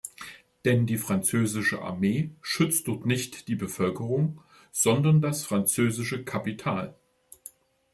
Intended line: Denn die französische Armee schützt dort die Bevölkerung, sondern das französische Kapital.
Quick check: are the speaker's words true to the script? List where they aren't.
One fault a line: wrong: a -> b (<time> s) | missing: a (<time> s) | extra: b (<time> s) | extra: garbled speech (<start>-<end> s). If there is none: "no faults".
extra: nicht (3.0 s)